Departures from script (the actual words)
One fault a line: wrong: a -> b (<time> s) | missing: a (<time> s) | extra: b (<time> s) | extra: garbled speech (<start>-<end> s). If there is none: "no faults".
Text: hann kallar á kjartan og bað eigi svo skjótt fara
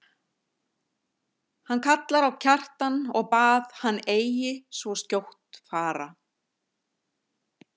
extra: hann (3.8 s)